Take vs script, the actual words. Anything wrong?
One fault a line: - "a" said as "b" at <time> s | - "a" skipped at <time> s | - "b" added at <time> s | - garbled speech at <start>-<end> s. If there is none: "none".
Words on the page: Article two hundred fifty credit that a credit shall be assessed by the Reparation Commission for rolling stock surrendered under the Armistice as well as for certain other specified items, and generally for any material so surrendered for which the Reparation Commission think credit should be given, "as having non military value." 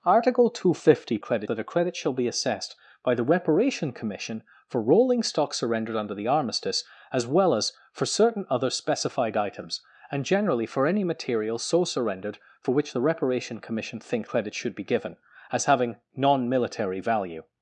none